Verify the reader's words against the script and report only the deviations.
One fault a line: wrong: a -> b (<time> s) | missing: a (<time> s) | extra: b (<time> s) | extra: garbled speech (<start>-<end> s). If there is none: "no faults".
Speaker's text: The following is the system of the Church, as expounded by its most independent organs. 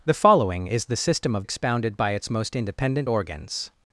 missing: the Church as (1.4 s)